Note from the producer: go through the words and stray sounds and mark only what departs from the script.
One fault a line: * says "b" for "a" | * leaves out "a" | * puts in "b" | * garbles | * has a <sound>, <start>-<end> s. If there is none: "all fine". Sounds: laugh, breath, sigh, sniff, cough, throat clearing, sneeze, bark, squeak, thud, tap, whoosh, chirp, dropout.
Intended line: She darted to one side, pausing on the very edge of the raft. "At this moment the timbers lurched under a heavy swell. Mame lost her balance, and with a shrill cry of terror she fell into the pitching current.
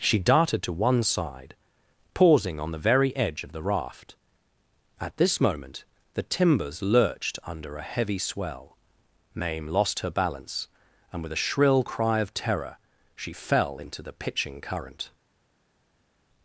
all fine